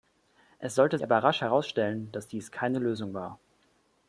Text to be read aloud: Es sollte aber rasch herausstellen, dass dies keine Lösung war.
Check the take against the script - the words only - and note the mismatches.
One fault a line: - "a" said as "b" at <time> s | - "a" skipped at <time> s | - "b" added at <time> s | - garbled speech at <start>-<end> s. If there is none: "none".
none